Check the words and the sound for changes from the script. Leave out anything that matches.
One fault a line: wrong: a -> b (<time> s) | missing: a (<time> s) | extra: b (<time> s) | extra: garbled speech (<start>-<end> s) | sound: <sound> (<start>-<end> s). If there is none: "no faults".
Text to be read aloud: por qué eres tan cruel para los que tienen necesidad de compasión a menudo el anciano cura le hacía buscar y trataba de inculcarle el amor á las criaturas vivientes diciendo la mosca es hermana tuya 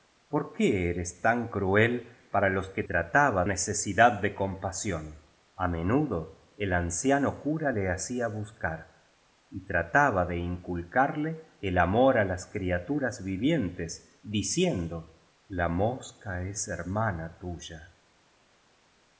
wrong: tienen -> trataba (2.9 s)